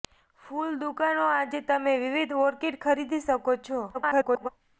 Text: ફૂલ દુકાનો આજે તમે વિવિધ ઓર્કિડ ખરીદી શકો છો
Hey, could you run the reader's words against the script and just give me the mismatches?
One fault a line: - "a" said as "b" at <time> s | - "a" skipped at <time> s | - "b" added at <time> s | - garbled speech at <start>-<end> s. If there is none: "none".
- garbled speech at 3.9-4.5 s